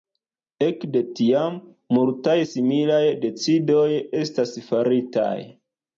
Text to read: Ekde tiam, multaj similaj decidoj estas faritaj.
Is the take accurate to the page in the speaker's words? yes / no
yes